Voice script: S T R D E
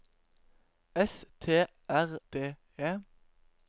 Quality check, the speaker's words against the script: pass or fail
pass